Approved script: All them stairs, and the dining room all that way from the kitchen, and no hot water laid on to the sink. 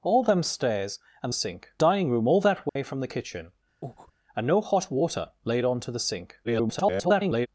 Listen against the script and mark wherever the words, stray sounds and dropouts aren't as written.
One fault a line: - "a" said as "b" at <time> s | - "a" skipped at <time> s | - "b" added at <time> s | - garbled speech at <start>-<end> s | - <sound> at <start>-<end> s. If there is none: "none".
- "the" said as "sink" at 1.3 s
- dropout at 2.7-2.8 s
- breath at 3.8-4.1 s
- garbled speech at 6.4-7.5 s